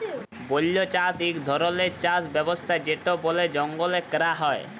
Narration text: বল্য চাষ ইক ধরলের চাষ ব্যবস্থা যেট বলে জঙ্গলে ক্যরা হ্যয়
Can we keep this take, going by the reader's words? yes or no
yes